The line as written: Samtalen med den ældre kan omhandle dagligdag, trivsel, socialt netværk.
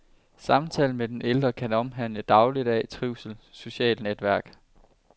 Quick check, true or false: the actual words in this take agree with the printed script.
true